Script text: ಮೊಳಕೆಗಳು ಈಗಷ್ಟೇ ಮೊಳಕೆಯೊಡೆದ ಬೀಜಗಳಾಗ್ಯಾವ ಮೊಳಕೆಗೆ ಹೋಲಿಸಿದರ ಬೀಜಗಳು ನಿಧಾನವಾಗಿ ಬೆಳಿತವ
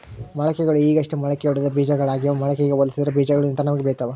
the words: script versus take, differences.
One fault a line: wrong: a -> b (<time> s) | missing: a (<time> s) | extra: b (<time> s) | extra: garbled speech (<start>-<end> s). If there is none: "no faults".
no faults